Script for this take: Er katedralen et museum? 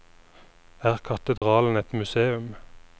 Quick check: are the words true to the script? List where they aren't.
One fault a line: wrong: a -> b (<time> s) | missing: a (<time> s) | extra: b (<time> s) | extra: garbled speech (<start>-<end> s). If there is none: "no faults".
no faults